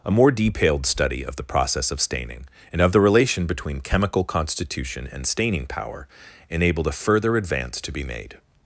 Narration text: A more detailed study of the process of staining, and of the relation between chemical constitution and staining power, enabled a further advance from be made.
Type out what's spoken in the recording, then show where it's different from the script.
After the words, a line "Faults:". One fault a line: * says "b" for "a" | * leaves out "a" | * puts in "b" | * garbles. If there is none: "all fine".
A more detailed study of the process of staining, and of the relation between chemical constitution and staining power, enabled a further advance to be made.
Faults:
* says "to" for "from"